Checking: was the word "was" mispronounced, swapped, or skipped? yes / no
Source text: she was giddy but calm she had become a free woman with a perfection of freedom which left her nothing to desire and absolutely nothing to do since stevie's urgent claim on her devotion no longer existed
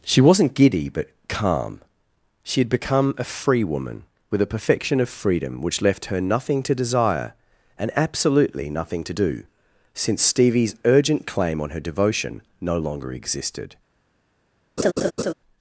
yes